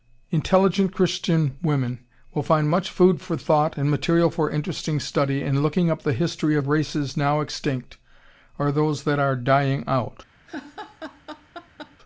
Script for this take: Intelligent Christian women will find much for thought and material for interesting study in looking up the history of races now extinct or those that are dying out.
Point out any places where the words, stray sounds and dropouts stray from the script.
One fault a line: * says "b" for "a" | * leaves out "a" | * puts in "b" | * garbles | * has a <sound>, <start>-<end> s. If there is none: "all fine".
* puts in "food"
* has a laugh, 10.5-12.0 s